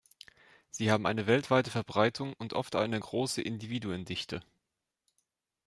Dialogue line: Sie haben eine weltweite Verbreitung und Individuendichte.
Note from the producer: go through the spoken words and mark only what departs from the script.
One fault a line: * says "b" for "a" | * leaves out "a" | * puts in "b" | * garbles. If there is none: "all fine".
* puts in "oft eine große"